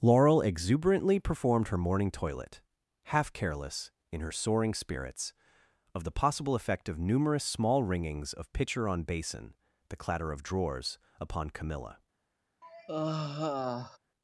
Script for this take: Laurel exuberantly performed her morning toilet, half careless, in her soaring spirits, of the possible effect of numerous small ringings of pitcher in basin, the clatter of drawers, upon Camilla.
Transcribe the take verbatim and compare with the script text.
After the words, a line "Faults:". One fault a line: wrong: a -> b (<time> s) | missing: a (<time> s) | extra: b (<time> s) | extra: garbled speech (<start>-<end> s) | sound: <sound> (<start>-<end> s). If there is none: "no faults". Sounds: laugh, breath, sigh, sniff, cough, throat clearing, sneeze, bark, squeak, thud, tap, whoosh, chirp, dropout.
Laurel exuberantly performed her morning toilet, half careless, in her soaring spirits, of the possible effect of numerous small ringings of pitcher on basin, the clatter of drawers, upon Camilla.
Faults:
wrong: in -> on (8.9 s)
sound: sigh (12.6-14.0 s)